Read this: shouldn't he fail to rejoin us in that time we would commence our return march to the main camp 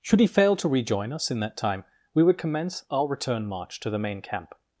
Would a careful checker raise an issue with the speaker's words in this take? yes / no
yes